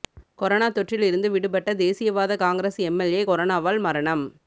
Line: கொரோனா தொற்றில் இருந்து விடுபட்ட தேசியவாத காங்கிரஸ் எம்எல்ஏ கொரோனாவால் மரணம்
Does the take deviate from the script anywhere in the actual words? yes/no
no